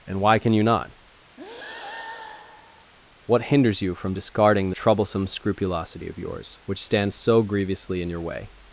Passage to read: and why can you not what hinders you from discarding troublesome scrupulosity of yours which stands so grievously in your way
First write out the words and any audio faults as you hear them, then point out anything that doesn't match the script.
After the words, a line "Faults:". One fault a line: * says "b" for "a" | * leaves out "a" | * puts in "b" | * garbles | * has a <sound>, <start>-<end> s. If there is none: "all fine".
and why can you not what hinders you from discarding troublesome scrupulosity of yours which stands so grievously in your way
Faults:
* has a breath, 1.4-2.9 s